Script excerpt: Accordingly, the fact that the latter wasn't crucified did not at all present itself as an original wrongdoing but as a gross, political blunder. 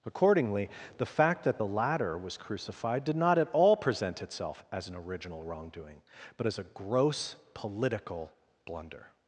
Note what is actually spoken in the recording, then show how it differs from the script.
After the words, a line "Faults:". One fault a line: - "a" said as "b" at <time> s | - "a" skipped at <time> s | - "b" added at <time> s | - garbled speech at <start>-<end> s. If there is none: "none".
Accordingly, the fact that the latter was crucified did not at all present itself as an original wrongdoing but as a gross, political blunder.
Faults:
- "wasn't" said as "was" at 2.2 s